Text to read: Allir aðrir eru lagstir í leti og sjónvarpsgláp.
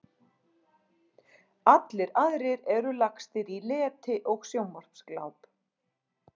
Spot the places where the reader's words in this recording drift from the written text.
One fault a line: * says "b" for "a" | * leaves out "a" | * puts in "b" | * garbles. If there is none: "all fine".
all fine